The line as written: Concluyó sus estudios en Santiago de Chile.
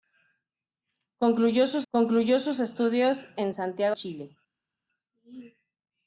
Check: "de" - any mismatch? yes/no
yes